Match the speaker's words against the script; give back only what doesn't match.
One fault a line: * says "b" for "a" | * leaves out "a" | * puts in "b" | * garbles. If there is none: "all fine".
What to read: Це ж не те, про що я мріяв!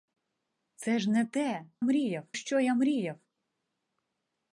* says "мріяв" for "про"